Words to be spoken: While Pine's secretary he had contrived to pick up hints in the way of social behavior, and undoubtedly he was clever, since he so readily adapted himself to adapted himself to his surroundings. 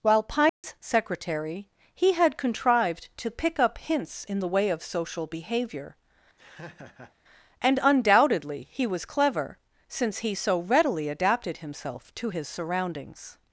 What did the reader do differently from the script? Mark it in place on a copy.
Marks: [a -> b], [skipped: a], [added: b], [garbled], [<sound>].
While Pine's [dropout] secretary he had contrived to pick up hints in the way of social behavior, [laugh] and undoubtedly he was clever, since he so readily adapted himself to [skipped: adapted himself to] his surroundings.